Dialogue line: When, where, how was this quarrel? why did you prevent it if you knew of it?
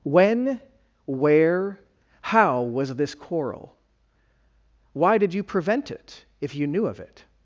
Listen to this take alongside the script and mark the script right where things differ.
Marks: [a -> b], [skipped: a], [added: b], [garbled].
When, where, how was this quarrel? why did you prevent it if you knew of it?